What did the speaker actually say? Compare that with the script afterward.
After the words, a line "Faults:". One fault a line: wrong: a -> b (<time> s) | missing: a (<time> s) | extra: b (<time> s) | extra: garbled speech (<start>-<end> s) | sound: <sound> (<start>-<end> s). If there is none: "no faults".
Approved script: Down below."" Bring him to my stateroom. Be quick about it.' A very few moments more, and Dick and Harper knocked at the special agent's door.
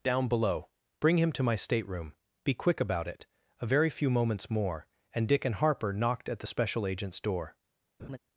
Down below."" Bring him to my stateroom. Be quick about it.' A very few moments more, and Dick and Harper knocked at the special agent's door.
Faults:
sound: laugh (8.0-8.2 s)